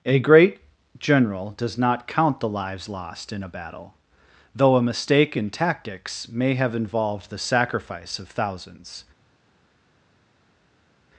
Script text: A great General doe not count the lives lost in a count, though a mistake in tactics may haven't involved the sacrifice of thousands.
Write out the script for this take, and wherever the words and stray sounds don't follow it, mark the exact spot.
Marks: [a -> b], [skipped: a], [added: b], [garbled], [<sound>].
A great General [doe -> does] not count the lives lost in a [count, -> battle] though a mistake in tactics may [haven't -> have] involved the sacrifice of thousands.